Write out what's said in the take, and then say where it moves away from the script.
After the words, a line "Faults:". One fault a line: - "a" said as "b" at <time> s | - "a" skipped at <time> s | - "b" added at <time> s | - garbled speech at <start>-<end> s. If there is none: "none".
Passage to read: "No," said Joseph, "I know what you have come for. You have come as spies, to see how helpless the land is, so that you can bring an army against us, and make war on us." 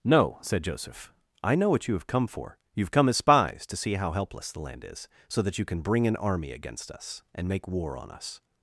"No," said Joseph, "I know what you have come for. You have come as spies, to see how helpless the land is, so that you can bring an army against us, and make war on us."
Faults:
none